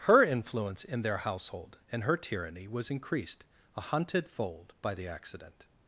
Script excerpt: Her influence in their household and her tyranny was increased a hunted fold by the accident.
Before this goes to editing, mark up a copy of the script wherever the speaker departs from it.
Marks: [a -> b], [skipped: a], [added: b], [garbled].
Her influence in their household and her tyranny was increased a hunted fold by the accident.